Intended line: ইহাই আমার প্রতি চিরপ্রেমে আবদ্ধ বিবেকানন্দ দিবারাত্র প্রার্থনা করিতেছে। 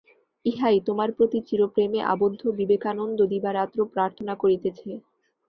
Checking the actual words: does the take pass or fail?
fail